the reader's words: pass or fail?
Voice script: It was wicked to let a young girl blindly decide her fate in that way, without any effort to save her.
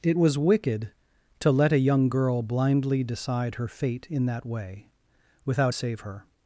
fail